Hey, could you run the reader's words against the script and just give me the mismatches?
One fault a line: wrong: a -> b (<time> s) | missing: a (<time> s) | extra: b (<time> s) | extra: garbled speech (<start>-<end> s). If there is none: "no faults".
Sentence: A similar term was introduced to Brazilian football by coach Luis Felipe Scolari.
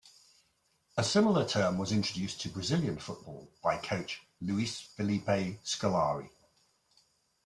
no faults